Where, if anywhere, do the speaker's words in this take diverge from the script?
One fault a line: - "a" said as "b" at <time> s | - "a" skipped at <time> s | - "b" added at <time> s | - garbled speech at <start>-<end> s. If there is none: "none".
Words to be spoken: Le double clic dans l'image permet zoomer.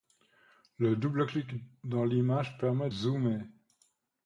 none